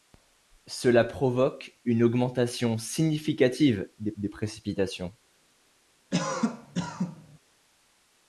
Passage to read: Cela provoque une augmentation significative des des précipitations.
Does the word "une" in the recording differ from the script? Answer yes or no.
no